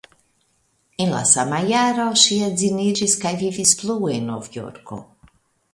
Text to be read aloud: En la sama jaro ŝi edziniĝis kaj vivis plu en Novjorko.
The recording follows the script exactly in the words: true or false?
true